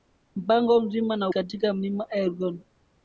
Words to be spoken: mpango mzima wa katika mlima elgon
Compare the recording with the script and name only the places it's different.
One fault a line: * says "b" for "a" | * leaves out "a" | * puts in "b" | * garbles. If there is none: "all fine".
all fine